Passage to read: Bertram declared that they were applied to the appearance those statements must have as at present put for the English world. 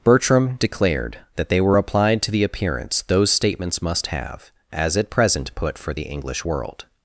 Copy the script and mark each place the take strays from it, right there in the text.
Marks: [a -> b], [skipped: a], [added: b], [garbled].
Bertram declared that they were applied to the appearance those statements must have as at present put for the English world.